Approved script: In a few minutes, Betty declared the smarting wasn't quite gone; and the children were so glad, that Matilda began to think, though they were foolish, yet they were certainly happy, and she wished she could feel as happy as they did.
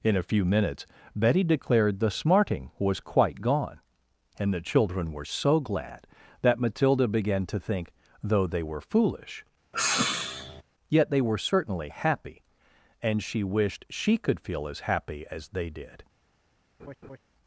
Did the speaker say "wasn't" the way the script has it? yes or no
no